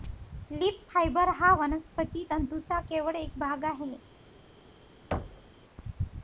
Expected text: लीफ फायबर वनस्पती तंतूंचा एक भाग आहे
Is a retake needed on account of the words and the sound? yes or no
yes